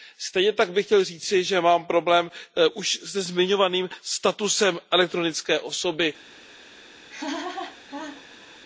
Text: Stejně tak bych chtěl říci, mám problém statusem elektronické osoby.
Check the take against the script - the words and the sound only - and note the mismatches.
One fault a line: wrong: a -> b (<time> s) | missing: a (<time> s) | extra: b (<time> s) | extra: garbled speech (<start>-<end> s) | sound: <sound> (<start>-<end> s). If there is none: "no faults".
extra: že (1.4 s)
extra: už se zmiňovaným (2.7 s)
sound: laugh (7.1-8.6 s)